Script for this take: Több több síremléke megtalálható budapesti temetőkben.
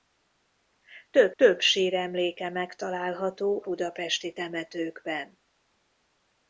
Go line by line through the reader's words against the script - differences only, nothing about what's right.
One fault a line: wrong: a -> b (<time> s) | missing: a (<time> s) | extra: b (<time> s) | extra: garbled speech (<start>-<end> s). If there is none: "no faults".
no faults